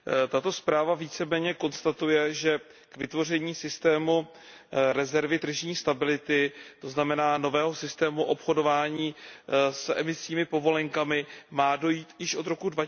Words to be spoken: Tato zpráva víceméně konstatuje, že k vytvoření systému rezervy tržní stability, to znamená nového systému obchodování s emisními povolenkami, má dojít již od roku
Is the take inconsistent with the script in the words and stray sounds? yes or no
no